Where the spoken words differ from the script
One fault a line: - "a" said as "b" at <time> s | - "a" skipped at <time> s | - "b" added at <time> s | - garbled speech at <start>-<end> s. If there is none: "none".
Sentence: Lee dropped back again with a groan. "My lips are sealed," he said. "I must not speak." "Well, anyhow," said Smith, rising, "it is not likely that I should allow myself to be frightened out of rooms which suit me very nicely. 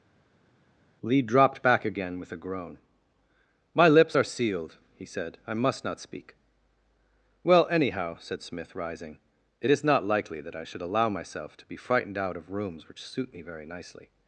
none